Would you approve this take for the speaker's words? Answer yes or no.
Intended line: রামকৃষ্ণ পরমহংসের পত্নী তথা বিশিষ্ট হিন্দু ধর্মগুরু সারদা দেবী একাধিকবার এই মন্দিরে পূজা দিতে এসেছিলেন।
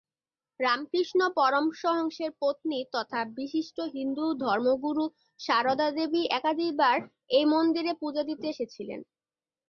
yes